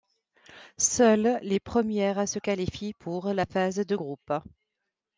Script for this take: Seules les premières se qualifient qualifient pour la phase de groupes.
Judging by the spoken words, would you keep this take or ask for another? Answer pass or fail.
fail